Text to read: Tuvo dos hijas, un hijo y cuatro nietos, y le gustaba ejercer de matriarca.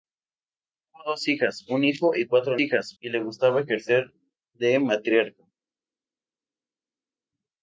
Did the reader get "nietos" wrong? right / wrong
wrong